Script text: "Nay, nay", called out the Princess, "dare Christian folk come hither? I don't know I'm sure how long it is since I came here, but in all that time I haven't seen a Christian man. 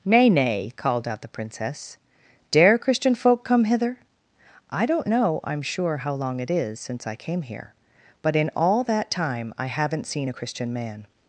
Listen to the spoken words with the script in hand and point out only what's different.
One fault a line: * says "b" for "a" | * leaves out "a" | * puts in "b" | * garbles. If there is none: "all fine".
all fine